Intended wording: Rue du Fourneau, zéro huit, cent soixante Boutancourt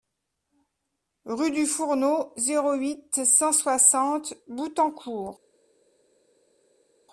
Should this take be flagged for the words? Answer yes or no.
no